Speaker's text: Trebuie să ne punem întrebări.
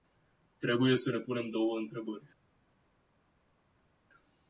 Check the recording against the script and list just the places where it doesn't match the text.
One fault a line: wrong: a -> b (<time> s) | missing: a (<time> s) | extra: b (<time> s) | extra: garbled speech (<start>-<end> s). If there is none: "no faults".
extra: două (1.5 s)